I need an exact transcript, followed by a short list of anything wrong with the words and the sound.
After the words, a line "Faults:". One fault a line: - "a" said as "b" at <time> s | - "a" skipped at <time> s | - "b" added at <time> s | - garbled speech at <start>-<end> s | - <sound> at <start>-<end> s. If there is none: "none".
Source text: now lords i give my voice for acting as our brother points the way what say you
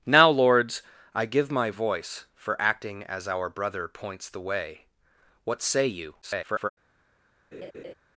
now lords i give my voice for acting as our brother points the way what say you [garbled]
Faults:
- garbled speech at 6.2-6.7 s
- laugh at 7.5-7.9 s